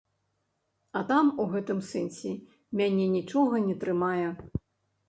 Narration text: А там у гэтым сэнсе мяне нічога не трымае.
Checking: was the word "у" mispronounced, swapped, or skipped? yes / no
no